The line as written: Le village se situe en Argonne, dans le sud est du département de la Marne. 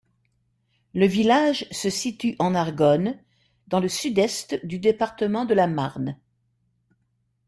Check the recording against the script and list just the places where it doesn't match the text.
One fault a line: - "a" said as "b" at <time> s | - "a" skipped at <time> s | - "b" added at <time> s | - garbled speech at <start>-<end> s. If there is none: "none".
none